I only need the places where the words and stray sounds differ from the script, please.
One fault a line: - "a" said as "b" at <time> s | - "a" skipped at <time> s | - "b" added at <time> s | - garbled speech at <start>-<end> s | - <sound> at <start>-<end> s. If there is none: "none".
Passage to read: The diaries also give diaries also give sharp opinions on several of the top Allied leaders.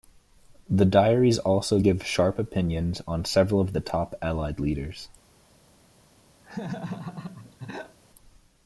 - "diaries also give" skipped at 2.1 s
- laugh at 6.4-8.0 s